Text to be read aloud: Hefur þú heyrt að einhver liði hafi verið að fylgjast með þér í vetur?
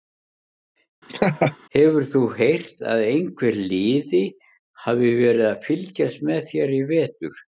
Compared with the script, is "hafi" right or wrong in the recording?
right